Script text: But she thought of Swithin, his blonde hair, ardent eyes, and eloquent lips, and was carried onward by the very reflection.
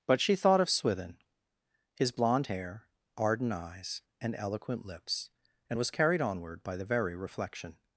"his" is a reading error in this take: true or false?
false